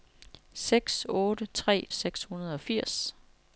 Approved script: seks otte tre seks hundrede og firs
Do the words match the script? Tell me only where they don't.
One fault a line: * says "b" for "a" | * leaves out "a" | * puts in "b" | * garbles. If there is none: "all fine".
all fine